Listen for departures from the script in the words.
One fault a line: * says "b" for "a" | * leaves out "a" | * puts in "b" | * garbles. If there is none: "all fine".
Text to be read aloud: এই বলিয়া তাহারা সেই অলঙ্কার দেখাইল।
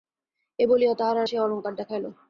all fine